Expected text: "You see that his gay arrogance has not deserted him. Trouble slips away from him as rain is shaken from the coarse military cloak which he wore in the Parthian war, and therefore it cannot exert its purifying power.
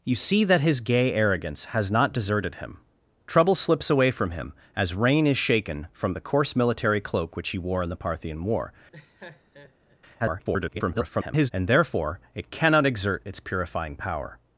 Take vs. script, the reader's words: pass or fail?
fail